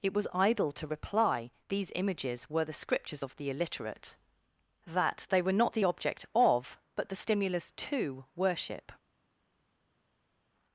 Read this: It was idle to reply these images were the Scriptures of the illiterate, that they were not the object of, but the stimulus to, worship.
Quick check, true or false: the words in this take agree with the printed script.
true